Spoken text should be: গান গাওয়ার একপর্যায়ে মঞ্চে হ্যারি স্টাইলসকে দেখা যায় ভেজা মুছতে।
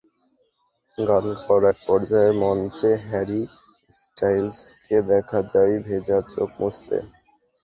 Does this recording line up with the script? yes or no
no